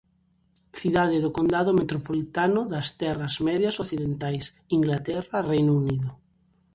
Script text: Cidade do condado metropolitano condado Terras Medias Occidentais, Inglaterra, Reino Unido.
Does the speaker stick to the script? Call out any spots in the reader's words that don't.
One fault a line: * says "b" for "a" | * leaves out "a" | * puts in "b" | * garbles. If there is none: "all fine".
* says "das" for "condado"